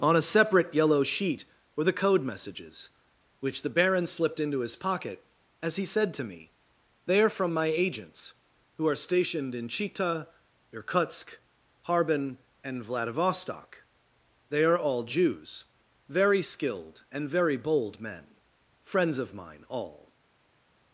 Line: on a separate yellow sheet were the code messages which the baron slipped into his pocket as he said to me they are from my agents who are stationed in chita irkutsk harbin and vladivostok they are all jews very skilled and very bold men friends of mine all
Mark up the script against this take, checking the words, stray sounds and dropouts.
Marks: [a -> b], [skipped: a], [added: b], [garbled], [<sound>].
on a separate yellow sheet were the code messages which the baron slipped into his pocket as he said to me they are from my agents who are stationed in chita irkutsk harbin and vladivostok they are all jews very skilled and very bold men friends of mine all